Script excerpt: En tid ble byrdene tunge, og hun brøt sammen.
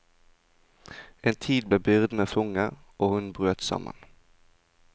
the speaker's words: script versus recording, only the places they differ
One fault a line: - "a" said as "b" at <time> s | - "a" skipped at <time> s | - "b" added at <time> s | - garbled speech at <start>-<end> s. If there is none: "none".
none